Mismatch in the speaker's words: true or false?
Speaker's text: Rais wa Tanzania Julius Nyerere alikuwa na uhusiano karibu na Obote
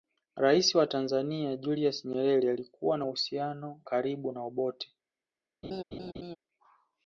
false